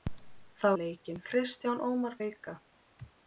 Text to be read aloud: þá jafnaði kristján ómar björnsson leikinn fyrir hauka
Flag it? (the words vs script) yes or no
yes